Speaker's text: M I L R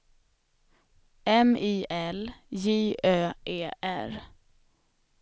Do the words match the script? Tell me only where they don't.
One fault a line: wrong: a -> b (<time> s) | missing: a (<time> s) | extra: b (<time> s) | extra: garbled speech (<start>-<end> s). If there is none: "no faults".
extra: J Ö E (2.5 s)